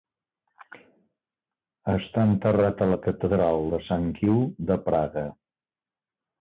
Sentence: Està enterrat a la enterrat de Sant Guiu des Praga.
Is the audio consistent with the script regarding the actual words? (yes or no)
no